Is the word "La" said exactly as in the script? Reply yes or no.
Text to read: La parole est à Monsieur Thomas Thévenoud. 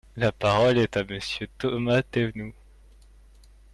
yes